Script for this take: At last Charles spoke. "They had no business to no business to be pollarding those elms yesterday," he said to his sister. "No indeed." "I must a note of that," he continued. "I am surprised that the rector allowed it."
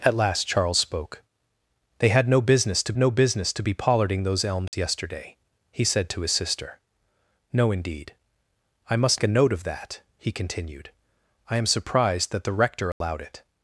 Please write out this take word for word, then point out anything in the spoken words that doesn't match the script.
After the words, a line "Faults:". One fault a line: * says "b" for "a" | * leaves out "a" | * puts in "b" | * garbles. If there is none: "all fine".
At last Charles spoke. "They had no business to no business to be pollarding those elms yesterday," he said to his sister. "No indeed." "I must a note of that," he continued. "I am surprised that the rector allowed it."
Faults:
all fine